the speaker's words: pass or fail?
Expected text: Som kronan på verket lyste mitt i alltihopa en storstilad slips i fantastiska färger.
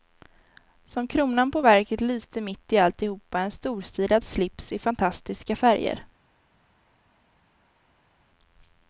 pass